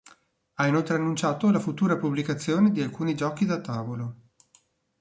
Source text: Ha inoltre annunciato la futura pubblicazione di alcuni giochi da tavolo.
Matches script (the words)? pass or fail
pass